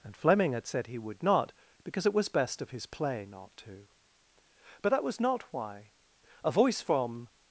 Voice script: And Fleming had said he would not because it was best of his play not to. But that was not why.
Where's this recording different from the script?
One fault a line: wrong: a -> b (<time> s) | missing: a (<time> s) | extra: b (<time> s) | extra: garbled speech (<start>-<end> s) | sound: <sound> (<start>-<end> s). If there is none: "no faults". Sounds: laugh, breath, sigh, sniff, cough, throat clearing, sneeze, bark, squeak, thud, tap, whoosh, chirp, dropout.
extra: A voice from (6.4 s)